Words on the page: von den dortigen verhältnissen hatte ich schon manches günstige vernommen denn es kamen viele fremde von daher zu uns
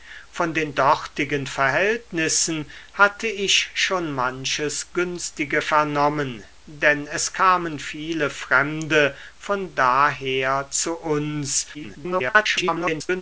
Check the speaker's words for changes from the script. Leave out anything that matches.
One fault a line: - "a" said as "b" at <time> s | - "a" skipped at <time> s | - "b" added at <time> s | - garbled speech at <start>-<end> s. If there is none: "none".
- garbled speech at 11.7-13.2 s